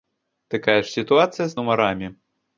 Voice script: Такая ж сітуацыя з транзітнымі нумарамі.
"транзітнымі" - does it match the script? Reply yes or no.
no